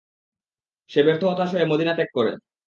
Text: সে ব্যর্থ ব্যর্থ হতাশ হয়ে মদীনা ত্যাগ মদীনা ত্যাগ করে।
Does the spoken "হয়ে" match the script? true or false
true